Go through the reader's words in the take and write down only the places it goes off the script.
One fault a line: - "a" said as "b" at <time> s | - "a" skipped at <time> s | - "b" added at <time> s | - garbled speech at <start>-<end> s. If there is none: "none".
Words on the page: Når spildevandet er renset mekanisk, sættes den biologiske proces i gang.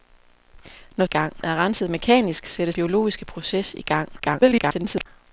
- "spildevandet" said as "gang" at 1.1 s
- "den" skipped at 2.8 s
- garbled speech at 4.2-5.1 s